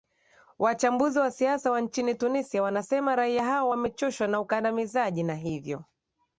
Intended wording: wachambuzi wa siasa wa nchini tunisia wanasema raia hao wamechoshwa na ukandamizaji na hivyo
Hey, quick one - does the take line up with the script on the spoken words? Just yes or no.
yes